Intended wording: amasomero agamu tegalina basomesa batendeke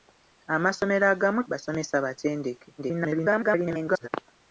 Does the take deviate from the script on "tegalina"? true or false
true